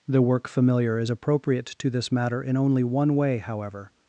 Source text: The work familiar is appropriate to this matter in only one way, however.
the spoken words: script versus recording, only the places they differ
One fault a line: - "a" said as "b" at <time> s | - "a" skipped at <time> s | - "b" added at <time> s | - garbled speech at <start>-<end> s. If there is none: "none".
none